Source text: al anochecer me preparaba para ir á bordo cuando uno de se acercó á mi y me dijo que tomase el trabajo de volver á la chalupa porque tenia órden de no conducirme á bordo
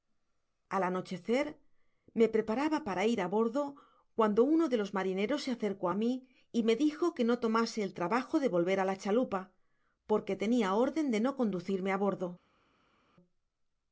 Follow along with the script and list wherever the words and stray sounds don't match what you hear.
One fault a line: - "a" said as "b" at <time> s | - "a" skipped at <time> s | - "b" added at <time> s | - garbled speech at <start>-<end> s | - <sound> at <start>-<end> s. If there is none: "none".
- "los marineros" added at 4.8 s
- "no" added at 7.3 s